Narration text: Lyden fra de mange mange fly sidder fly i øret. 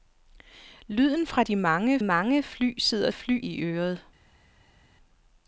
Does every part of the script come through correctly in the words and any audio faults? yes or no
yes